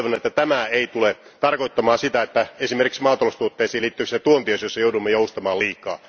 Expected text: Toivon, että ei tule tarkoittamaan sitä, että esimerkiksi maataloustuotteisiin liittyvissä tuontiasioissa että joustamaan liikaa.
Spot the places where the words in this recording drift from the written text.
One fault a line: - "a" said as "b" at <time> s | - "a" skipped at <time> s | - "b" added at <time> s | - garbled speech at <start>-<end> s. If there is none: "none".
- "tämä" added at 0.3 s
- "että" said as "joudumme" at 4.8 s